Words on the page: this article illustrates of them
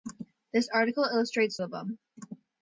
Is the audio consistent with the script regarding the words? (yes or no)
yes